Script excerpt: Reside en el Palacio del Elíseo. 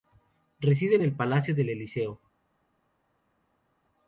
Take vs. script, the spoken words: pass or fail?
pass